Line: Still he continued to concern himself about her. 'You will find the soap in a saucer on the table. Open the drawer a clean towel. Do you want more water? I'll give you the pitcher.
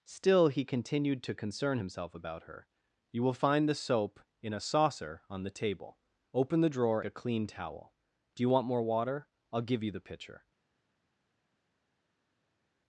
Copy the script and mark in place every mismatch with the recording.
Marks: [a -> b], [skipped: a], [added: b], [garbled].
Still he continued to concern himself about her. 'You will find the soap in a saucer on the table. Open the drawer a clean towel. Do you want more water? I'll give you the pitcher.